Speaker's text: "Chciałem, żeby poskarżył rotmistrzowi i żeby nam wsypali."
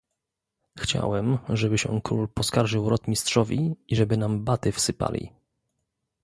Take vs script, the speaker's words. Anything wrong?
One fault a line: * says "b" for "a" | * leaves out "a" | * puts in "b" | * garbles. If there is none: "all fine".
* puts in "się król"
* puts in "baty"